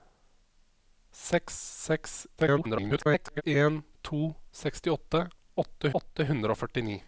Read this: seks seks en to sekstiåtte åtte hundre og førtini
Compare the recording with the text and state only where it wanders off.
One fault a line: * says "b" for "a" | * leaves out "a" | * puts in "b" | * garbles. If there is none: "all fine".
* garbles
* puts in "åtte"